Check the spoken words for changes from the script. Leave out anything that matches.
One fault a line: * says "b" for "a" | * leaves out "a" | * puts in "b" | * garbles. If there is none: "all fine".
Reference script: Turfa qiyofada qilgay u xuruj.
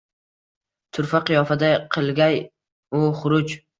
all fine